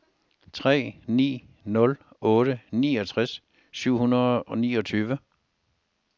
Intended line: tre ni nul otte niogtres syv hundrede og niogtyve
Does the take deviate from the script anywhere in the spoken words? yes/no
no